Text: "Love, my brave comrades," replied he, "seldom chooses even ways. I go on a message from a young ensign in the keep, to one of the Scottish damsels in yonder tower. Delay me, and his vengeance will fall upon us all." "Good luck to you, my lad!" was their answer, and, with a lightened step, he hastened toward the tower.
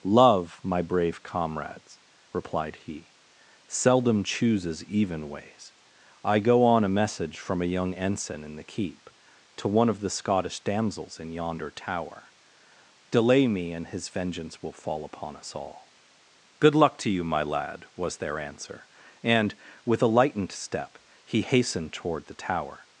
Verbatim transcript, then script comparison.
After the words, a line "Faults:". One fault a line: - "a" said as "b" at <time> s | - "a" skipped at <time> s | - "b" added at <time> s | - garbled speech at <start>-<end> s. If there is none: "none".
"Love, my brave comrades," replied he, "seldom chooses even ways. I go on a message from a young ensign in the keep, to one of the Scottish damsels in yonder tower. Delay me, and his vengeance will fall upon us all." "Good luck to you, my lad!" was their answer, and, with a lightened step, he hastened toward the tower.
Faults:
none